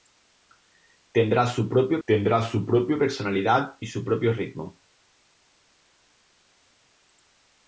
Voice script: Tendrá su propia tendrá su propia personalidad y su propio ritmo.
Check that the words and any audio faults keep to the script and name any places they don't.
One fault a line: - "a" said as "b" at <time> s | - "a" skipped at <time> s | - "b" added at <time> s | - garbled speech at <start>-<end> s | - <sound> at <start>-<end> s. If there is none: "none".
none